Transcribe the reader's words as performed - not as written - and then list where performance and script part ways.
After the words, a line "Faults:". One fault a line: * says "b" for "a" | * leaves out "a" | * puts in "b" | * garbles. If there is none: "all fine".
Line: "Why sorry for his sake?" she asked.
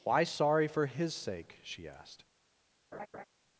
"Why sorry for his sake?" she asked.
Faults:
all fine